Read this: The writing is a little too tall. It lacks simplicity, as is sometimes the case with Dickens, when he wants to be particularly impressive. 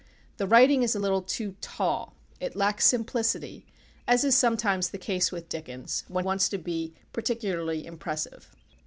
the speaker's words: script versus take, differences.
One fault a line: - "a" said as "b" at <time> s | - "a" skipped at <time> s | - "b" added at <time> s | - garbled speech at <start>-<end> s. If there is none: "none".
- "he" skipped at 6.2 s